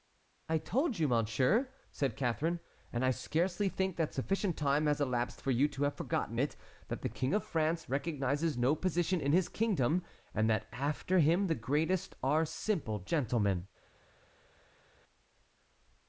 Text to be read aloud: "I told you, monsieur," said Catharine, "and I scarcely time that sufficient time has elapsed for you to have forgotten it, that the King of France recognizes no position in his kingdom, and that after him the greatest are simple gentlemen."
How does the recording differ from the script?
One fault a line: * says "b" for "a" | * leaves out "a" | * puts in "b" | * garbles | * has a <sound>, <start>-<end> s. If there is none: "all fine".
* says "think" for "time"